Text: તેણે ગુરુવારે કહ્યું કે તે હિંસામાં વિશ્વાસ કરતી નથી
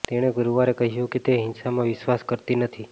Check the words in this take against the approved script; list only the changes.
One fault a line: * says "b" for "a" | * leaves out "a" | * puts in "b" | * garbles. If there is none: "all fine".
all fine